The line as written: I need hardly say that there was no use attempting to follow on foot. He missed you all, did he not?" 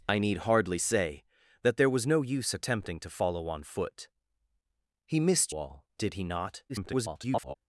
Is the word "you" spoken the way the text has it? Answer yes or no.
no